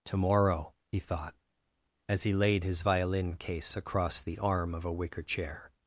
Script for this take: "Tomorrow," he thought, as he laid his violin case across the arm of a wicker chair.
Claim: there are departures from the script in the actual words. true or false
false